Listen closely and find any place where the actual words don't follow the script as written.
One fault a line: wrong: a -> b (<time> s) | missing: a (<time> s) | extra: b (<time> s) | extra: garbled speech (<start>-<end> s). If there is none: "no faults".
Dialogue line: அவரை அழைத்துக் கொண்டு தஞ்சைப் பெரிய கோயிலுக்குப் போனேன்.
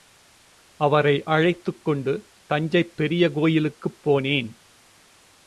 no faults